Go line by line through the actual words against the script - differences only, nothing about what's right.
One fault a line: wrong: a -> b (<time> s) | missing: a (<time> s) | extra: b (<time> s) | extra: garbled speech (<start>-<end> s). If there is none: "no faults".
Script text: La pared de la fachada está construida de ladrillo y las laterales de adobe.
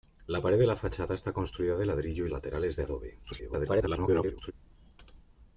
missing: las (2.3 s)
extra: garbled speech (3.2-4.5 s)